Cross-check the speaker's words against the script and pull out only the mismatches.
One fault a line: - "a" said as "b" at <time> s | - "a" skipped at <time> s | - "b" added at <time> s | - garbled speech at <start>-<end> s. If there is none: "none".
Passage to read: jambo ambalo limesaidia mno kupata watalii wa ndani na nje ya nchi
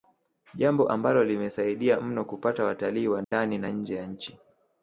none